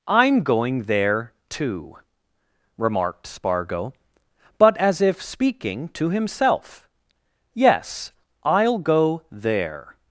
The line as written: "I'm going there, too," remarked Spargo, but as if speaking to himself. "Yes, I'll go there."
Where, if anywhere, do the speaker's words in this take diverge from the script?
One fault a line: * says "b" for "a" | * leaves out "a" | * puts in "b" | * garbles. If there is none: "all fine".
all fine